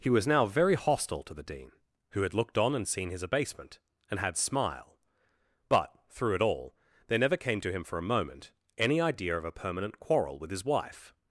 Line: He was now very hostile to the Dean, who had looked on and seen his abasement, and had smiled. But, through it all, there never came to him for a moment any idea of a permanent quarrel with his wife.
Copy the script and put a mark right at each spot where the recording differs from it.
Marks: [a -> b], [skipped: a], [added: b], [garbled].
He was now very hostile to the Dean, who had looked on and seen his abasement, and had [smiled. -> smile] But, through it all, there never came to him for a moment any idea of a permanent quarrel with his wife.